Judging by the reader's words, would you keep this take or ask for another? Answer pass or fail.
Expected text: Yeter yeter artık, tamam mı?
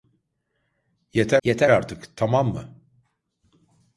pass